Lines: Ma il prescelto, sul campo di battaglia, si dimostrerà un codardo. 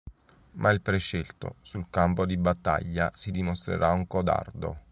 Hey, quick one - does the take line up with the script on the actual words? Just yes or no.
yes